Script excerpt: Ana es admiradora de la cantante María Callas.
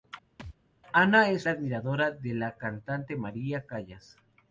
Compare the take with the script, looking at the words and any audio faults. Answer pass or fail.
fail